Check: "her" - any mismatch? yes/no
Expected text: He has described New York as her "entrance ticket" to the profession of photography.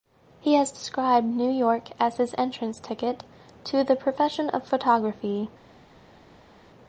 yes